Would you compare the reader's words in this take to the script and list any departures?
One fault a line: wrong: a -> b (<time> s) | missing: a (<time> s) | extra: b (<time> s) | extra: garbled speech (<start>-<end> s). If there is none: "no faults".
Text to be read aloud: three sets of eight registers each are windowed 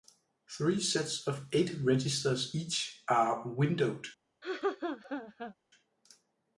no faults